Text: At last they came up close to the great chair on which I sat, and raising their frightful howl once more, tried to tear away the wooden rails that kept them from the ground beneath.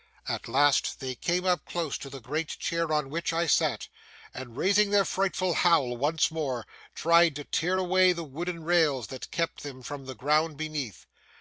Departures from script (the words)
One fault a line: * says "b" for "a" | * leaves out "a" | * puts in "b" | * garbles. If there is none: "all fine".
all fine